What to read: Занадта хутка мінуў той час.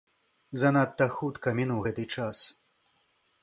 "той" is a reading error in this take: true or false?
true